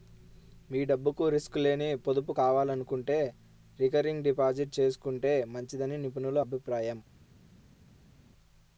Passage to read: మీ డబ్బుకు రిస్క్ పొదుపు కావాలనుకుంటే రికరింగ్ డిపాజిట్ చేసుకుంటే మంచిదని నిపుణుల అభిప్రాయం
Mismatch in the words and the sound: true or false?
true